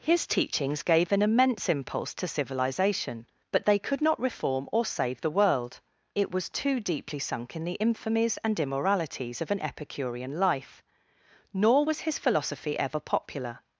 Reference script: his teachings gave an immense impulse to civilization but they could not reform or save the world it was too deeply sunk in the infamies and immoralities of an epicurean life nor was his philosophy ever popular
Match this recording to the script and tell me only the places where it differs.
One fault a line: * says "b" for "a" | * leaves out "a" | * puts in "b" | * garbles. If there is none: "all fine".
all fine